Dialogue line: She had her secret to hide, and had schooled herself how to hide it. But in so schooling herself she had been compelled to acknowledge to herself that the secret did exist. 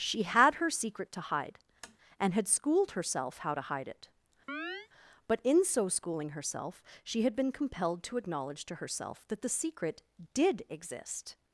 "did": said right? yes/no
yes